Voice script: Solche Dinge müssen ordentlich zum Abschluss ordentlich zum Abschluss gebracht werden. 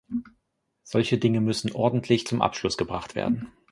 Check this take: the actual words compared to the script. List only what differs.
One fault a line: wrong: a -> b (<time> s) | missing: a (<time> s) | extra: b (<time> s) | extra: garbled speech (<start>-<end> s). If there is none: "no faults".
missing: ordentlich zum Abschluss (2.8 s)